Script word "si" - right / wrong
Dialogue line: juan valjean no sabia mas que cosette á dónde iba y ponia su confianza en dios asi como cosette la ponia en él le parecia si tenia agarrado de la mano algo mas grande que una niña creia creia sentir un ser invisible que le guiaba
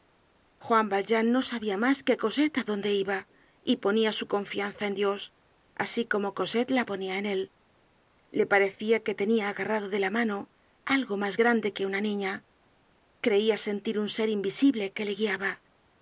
wrong